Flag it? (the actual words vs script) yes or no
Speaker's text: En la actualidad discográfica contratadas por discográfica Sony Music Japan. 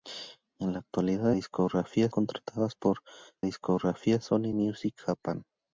no